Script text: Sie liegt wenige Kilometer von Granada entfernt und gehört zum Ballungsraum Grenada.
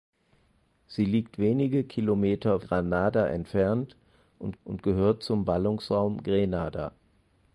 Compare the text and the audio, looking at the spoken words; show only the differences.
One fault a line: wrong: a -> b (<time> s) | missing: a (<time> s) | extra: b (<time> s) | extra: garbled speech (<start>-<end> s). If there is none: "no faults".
missing: von (2.6 s)
extra: und (4.6 s)